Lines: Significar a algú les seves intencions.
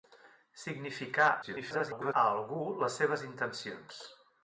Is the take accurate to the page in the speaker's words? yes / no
no